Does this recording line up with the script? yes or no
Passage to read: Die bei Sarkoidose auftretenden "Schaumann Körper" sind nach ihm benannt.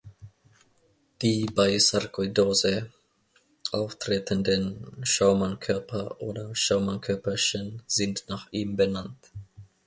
no